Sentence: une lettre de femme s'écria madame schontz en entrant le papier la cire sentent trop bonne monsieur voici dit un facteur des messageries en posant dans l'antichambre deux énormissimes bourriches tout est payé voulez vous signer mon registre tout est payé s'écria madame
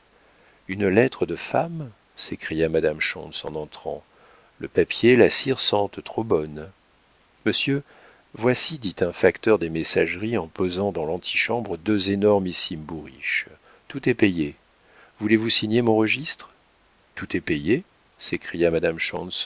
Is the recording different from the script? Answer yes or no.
no